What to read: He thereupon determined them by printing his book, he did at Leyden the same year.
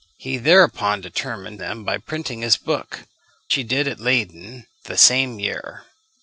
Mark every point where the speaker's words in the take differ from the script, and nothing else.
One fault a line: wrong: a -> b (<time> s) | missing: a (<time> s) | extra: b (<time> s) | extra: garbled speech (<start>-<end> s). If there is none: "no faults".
no faults